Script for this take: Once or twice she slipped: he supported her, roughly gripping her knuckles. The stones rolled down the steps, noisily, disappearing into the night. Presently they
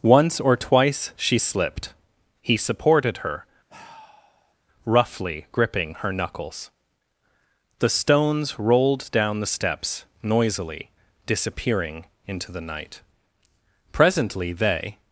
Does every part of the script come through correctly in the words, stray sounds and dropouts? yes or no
no